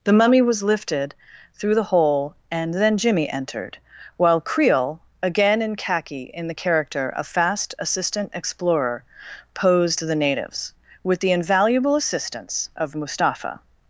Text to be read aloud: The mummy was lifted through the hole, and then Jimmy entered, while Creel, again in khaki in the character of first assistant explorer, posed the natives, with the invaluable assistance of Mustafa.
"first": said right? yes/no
no